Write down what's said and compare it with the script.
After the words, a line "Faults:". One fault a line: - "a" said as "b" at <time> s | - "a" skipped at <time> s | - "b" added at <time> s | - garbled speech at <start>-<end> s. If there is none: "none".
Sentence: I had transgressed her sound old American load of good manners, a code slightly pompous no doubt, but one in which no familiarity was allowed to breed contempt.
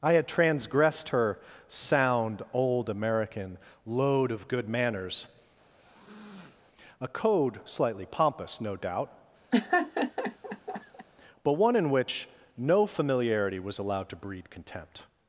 I had transgressed her sound old American load of good manners, a code slightly pompous no doubt, but one in which no familiarity was allowed to breed contempt.
Faults:
none